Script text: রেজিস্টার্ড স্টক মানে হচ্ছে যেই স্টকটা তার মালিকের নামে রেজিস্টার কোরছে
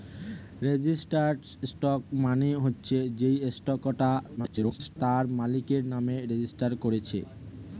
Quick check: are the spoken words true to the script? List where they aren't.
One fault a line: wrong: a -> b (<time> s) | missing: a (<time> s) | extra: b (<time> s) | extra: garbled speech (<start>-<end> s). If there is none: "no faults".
extra: garbled speech (4.4-5.0 s)